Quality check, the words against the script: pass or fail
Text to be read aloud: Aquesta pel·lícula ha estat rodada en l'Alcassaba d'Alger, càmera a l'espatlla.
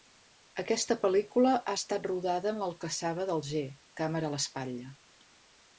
pass